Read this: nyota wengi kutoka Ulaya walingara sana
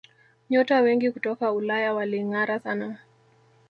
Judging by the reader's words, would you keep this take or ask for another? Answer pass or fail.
pass